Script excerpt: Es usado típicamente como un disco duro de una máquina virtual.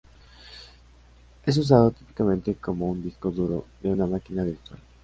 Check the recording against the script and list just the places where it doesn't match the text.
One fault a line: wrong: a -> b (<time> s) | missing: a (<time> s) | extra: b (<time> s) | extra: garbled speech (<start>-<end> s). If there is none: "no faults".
no faults